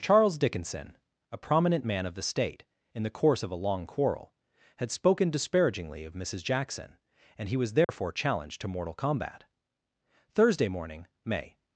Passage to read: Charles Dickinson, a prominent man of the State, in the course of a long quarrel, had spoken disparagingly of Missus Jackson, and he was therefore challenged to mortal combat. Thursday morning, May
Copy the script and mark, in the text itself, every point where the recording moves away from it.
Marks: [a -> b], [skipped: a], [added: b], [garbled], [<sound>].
Charles Dickinson, a prominent man of the State, in the course of a long quarrel, had spoken disparagingly of Missus Jackson, and he was therefore [dropout] challenged to mortal combat. Thursday morning, May